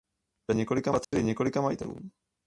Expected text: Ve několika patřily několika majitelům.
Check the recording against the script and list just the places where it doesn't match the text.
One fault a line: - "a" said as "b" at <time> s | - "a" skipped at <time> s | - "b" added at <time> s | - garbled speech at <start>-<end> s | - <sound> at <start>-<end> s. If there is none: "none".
- dropout at 1.0-1.1 s